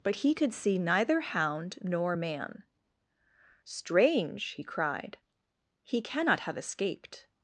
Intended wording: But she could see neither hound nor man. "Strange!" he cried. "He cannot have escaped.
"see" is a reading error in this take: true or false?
false